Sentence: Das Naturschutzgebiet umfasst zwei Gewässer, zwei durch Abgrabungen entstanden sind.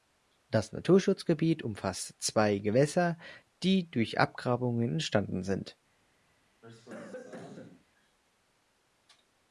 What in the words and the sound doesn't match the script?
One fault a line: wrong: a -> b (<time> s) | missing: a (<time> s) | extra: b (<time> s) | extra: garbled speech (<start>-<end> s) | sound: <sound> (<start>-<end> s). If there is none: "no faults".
wrong: zwei -> die (3.6 s)
sound: cough (6.6-7.9 s)